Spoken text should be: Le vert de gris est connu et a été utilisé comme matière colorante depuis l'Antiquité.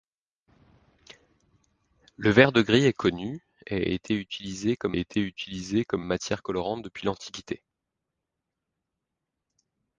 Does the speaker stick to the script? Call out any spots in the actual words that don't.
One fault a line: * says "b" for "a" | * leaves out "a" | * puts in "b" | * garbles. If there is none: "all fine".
* puts in "été utilisé comme"